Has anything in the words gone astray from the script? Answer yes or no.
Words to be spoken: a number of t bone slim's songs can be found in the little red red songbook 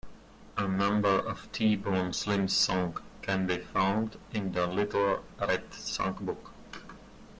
yes